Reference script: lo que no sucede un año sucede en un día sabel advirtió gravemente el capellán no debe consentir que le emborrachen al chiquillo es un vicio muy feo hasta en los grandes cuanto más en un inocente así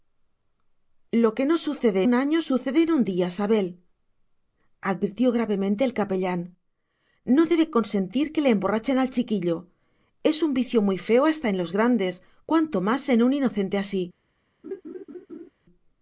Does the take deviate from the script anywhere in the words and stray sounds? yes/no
yes